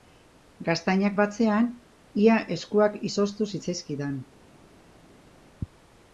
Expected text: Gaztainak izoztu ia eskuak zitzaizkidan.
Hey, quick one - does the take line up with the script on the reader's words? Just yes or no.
no